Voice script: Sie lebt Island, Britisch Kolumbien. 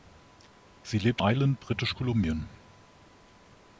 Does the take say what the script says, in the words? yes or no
yes